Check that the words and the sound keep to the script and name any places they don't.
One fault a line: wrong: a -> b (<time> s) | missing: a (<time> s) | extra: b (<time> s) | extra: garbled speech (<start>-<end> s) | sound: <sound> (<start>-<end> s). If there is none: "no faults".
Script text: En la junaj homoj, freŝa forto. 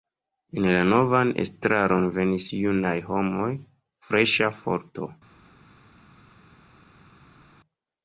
extra: novan estraron venis (0.9 s)